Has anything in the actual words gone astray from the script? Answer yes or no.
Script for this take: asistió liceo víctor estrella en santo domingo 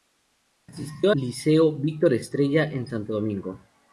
no